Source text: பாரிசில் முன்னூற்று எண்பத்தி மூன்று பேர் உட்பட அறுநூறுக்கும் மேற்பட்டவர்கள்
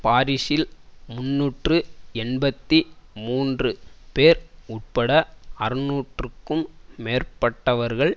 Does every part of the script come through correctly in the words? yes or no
yes